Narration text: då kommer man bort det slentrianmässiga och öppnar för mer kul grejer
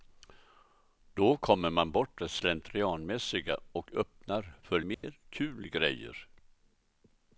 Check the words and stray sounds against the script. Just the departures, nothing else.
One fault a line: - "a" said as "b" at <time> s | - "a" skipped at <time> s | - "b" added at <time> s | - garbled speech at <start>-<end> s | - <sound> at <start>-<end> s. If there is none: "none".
- dropout at 4.9-5.0 s